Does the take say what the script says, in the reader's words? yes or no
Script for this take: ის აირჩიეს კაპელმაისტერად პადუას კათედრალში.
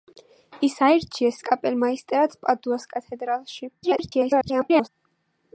no